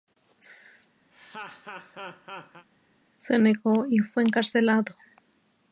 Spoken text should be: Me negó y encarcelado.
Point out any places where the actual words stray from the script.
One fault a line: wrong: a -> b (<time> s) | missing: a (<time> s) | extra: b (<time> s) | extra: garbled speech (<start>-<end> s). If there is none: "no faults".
wrong: Me -> Se (3.2 s)
extra: fue (4.0 s)